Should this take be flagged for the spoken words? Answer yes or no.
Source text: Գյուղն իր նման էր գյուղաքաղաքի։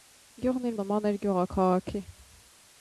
no